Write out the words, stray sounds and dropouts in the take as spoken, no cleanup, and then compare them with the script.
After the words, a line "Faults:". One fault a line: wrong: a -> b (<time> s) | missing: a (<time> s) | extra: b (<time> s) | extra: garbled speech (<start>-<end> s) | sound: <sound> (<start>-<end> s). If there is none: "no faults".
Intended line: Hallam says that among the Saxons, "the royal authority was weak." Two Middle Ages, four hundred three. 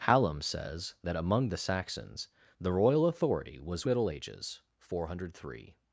Hallam says that among the Saxons, "the royal authority was Middle Ages, four hundred three.
Faults:
missing: weak Two (3.9 s)